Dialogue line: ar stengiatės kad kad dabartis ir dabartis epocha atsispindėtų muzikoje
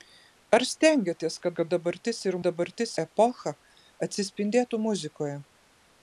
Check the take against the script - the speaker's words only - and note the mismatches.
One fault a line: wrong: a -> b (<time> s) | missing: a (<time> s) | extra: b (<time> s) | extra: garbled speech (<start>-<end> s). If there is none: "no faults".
no faults